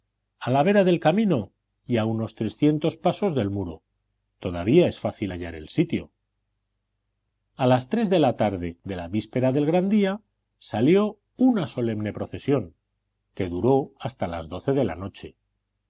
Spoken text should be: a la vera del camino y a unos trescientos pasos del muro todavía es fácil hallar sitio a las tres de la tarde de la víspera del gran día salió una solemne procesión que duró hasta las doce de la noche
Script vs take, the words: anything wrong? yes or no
yes